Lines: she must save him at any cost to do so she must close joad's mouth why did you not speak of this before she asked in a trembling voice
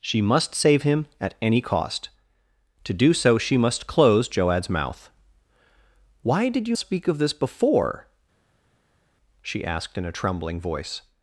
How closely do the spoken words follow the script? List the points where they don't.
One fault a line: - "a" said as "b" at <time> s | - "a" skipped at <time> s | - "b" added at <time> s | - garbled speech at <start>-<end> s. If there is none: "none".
- "not" skipped at 6.8 s